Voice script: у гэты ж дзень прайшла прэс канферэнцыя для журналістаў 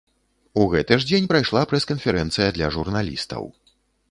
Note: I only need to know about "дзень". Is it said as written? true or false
true